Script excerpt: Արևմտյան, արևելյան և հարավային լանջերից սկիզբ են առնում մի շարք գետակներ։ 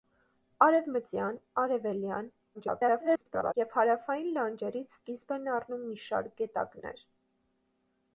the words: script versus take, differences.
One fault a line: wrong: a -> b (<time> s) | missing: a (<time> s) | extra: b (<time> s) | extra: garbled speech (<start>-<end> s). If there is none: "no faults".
extra: garbled speech (2.5-3.5 s)